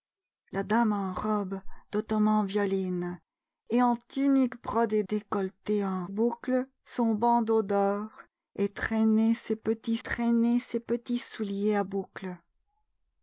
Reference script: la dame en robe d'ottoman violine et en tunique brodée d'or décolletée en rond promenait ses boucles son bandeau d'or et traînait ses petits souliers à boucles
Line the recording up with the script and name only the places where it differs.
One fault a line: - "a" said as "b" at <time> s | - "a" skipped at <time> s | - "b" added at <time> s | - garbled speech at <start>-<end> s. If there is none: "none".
- "d'or" skipped at 5.0 s
- "rond promenait ses" skipped at 6.1 s
- "traînait ses petits" added at 10.0 s